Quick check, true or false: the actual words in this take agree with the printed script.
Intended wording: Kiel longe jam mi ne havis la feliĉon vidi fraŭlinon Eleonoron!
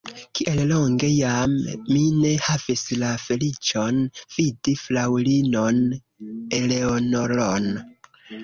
true